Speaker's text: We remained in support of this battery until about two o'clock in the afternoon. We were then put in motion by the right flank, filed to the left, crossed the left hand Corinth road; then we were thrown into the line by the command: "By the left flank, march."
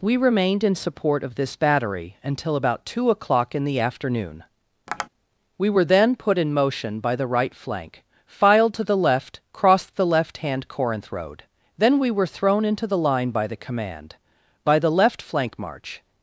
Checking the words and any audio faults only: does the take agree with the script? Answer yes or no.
no